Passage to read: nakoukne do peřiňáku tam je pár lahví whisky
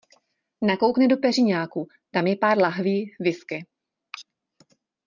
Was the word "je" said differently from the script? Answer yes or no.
no